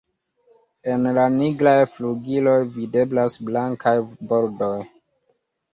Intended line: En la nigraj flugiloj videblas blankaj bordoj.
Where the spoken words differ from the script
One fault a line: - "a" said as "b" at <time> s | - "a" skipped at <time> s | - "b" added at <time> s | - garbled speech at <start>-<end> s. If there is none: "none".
none